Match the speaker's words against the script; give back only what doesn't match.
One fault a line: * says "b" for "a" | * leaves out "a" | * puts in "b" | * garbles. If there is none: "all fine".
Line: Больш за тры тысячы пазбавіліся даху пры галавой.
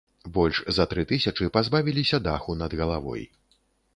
* says "над" for "пры"